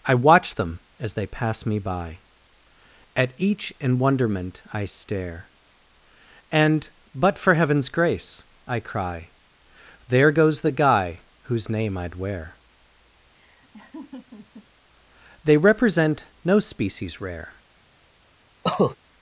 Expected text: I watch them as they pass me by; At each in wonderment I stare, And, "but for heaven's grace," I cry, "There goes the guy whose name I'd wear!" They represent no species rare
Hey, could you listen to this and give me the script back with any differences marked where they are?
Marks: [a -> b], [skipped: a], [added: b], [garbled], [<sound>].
I watch them as they pass me by; At each in wonderment I stare, And, "but for heaven's grace," I cry, "There goes the guy whose name I'd wear!" [laugh] They represent no species rare [cough]